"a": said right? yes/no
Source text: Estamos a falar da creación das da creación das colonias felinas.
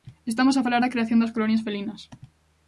yes